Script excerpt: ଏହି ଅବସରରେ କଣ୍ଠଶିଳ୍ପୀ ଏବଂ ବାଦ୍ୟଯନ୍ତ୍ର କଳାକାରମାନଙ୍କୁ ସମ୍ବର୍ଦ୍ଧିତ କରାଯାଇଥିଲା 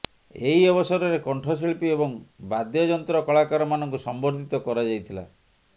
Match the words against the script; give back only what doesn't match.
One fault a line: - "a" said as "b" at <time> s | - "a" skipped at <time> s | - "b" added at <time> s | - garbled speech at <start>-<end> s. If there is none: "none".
none